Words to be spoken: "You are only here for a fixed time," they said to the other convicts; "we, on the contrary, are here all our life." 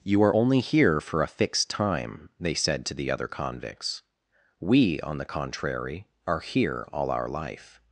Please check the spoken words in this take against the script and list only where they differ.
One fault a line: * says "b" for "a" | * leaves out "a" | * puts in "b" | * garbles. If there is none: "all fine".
all fine